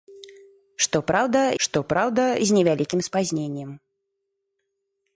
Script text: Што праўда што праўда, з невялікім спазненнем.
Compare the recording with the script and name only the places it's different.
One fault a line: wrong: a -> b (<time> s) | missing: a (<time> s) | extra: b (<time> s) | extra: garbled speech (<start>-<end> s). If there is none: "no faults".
no faults